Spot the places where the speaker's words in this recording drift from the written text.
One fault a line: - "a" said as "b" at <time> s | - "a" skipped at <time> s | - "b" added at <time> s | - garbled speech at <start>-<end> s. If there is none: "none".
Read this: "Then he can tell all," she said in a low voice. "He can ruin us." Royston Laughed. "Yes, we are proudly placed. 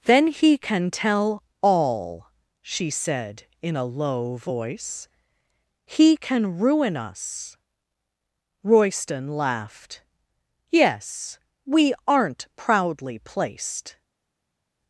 - "are" said as "aren't" at 12.1 s